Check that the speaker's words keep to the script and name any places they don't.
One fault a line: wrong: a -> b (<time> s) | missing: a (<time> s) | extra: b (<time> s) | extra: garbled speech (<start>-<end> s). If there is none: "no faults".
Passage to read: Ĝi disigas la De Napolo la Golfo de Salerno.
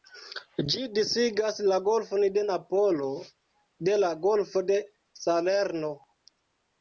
extra: Golfon (1.9 s)
extra: de (3.9 s)